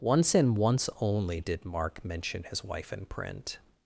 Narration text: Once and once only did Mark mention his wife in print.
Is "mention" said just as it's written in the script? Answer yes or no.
yes